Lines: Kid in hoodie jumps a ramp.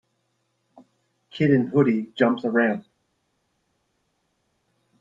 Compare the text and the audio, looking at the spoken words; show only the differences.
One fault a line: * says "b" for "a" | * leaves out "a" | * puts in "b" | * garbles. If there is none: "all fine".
all fine